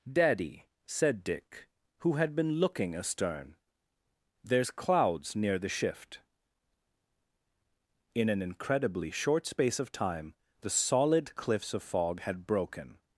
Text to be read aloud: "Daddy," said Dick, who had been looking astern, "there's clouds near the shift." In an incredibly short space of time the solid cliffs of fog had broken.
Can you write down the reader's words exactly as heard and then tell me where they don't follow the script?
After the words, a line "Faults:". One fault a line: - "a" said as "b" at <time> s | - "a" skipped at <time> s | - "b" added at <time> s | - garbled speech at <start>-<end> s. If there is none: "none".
"Daddy," said Dick, who had been looking astern, "there's clouds near the shift." In an incredibly short space of time the solid cliffs of fog had broken.
Faults:
none